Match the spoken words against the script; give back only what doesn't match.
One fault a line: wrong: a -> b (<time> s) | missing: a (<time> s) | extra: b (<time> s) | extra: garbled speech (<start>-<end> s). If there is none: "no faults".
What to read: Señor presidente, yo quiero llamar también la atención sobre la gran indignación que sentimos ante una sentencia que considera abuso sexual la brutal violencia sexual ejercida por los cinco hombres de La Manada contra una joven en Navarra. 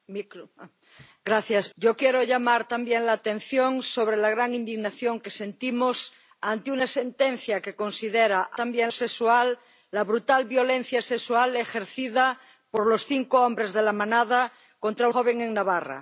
missing: presidente (1.7 s)
wrong: abuso -> también (8.6 s)
missing: una (15.1 s)